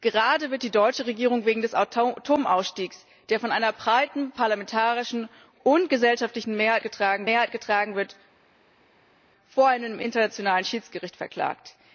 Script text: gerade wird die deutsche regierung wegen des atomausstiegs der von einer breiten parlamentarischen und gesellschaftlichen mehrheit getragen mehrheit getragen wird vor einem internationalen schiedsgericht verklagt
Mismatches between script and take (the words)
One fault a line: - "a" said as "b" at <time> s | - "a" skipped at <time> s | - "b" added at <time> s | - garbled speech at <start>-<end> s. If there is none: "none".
none